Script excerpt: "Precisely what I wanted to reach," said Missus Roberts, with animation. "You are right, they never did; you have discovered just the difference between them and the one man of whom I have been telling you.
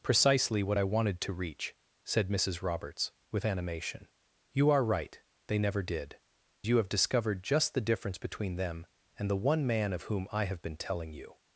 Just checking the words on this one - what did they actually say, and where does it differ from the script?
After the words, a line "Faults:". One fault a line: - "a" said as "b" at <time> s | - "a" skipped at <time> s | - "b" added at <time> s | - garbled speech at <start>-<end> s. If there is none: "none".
"Precisely what I wanted to reach," said Missus Roberts, with animation. "You are right, they never did; you have discovered just the difference between them and the one man of whom I have been telling you.
Faults:
none